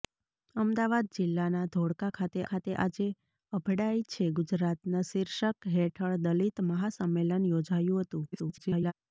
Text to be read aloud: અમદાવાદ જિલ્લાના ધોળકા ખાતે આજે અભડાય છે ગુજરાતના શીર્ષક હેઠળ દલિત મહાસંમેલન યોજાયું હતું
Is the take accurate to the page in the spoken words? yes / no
no